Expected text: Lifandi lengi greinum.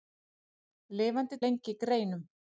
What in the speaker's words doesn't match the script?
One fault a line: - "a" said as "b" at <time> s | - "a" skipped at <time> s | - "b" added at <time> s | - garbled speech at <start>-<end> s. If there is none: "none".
none